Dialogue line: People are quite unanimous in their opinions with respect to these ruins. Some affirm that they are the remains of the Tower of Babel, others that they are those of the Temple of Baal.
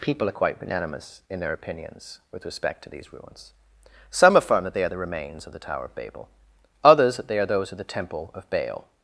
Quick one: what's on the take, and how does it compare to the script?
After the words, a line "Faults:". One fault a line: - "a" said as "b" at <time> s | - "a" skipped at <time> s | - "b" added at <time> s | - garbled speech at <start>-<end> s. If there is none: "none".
People are quite unanimous in their opinions with respect to these ruins. Some affirm that they are the remains of the Tower of Babel, others that they are those of the Temple of Baal.
Faults:
none